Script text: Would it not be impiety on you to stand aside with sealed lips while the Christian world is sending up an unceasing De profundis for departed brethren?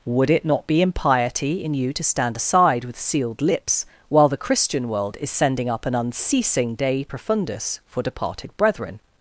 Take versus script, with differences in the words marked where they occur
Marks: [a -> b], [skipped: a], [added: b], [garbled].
Would it not be impiety [on -> in] you to stand aside with sealed lips while the Christian world is sending up an unceasing De profundis for departed brethren?